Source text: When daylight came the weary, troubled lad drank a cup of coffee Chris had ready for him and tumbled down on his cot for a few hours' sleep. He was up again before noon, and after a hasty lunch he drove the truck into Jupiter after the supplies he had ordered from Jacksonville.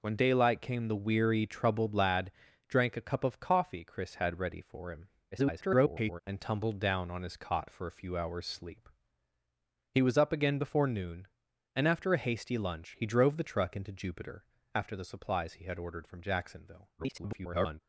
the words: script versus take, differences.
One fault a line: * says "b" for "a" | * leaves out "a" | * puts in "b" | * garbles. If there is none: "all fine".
* garbles
* garbles